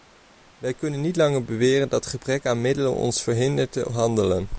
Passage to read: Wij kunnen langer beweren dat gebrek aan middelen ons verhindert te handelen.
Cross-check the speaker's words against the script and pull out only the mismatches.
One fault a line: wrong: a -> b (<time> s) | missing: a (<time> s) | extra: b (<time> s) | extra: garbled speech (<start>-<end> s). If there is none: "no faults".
extra: niet (1.0 s)